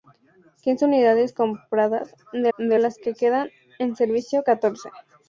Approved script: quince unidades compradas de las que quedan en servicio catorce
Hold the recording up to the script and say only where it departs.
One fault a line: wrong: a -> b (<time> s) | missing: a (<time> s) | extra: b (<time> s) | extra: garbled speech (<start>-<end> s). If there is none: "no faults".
extra: de (2.6 s)